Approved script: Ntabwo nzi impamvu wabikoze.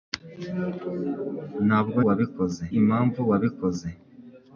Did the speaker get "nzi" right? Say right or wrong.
wrong